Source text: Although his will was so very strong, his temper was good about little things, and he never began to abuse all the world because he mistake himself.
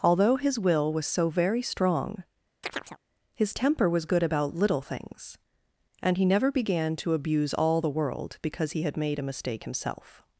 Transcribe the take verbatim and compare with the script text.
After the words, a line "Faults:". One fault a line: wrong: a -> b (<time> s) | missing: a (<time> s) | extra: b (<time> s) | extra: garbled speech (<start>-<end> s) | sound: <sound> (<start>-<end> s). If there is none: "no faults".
Although his will was so very strong, his temper was good about little things, and he never began to abuse all the world because he had made a mistake himself.
Faults:
sound: chirp (2.6-3.0 s)
extra: had made a (8.8 s)